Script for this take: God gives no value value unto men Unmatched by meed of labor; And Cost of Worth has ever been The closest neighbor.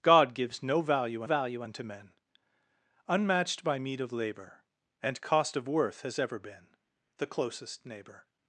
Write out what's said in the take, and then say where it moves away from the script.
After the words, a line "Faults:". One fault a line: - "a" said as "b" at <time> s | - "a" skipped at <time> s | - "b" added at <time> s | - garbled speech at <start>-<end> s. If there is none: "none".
God gives no value value unto men Unmatched by meed of labor; And Cost of Worth has ever been The closest neighbor.
Faults:
none